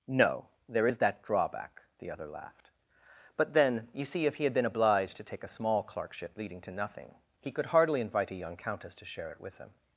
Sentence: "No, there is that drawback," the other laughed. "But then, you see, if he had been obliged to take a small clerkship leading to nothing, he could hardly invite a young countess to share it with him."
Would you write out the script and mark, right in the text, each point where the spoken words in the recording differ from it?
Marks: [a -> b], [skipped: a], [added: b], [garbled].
"No, there is that drawback," the other laughed. "But then, you see, if he had been obliged to take a small clerkship leading to nothing, he could hardly invite a young countess to share it with him."